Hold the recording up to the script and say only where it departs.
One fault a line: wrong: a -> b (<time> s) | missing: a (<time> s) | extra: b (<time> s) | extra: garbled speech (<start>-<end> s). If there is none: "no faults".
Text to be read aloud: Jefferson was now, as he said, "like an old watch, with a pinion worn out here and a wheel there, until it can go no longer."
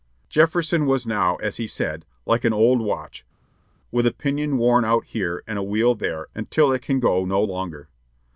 no faults